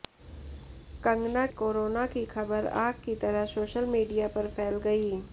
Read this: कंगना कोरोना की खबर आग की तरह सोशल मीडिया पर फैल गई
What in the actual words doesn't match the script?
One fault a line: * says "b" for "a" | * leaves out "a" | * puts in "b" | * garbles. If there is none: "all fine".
all fine